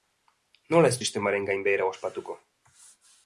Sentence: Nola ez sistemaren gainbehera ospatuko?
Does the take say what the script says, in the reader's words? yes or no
yes